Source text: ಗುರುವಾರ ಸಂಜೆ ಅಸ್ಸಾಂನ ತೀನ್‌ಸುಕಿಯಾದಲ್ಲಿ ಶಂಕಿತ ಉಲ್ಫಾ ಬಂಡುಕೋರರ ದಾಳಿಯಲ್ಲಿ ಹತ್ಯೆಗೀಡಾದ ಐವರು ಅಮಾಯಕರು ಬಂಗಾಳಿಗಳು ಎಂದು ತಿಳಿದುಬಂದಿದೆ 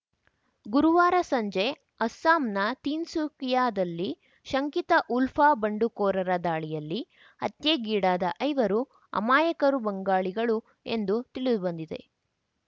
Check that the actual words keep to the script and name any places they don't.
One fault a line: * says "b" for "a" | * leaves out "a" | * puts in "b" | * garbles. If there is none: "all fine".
all fine